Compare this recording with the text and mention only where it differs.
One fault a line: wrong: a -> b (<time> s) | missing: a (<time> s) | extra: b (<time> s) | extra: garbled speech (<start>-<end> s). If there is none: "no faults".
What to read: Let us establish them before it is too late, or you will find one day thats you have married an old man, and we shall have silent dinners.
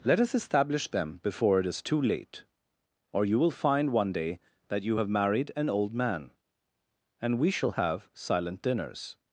wrong: thats -> that (4.7 s)